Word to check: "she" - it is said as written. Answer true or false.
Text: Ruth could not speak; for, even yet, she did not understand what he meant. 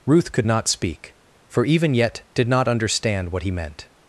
false